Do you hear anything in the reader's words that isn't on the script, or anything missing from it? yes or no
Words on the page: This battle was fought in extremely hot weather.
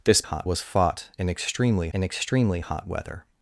yes